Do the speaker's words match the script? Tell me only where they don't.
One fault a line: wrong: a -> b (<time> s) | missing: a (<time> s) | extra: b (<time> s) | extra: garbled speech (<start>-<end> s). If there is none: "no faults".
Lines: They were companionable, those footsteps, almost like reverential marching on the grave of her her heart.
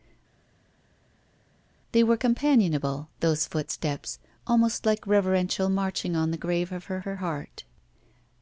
no faults